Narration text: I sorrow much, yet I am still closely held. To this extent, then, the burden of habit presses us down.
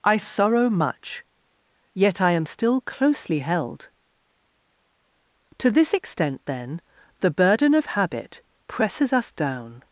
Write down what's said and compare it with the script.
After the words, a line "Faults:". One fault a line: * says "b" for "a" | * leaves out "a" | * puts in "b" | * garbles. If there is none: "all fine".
I sorrow much, yet I am still closely held. To this extent, then, the burden of habit presses us down.
Faults:
all fine